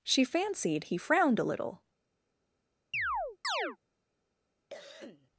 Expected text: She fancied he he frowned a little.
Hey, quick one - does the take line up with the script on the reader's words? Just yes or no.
no